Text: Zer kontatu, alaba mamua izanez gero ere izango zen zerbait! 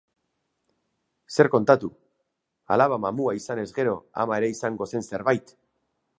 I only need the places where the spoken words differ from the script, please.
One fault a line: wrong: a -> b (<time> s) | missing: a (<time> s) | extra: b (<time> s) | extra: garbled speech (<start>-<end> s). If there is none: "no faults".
extra: ama (4.2 s)